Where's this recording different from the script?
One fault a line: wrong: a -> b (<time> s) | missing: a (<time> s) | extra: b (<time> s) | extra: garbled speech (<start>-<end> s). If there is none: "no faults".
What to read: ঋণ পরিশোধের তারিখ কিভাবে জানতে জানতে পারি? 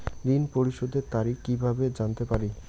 missing: জানতে (2.2 s)